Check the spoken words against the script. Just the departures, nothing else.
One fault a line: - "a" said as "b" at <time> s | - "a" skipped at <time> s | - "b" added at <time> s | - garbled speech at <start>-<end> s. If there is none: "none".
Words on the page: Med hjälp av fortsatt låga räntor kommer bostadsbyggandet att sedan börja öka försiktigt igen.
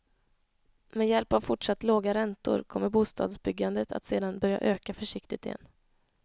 none